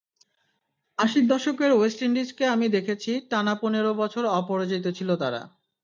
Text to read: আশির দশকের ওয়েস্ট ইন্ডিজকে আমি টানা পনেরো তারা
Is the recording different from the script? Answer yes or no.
yes